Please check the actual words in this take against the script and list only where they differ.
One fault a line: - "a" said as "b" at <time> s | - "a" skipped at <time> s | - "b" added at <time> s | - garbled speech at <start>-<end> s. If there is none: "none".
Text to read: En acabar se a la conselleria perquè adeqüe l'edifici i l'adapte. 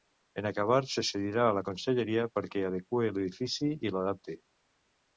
- "cedirà" added at 1.1 s